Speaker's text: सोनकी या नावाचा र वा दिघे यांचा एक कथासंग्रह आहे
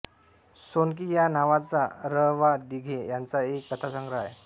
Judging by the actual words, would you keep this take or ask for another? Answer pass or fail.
pass